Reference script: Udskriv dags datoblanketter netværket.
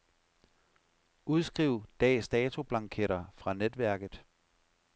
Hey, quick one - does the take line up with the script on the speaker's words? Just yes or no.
no